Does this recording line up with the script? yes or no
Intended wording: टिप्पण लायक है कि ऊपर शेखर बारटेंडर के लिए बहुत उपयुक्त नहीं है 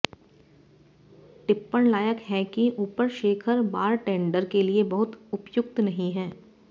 yes